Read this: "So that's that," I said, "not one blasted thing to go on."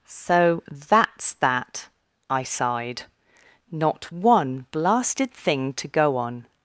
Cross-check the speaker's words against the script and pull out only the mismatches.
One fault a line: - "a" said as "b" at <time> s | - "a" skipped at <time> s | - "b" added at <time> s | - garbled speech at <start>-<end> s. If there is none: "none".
- "said" said as "sighed" at 2.4 s